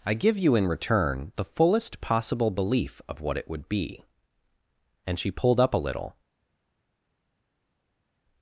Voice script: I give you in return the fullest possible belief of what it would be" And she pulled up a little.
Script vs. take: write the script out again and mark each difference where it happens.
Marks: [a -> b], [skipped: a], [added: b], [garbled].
I give you in return the fullest possible belief of what it would be" And she pulled up a little.